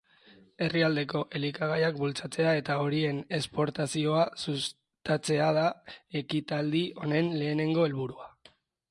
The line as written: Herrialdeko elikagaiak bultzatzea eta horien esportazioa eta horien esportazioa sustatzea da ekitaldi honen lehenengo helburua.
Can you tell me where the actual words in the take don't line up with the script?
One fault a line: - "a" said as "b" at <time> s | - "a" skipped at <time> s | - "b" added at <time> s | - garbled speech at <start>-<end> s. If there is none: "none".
- "eta horien esportazioa" skipped at 4.2 s